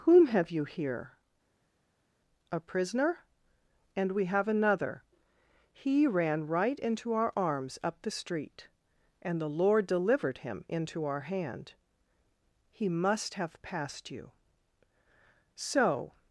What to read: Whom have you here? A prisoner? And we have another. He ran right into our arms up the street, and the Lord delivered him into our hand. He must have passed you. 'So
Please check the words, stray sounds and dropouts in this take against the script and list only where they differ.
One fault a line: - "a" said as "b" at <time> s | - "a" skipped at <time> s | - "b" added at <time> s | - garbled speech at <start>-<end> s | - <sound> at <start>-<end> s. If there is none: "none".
none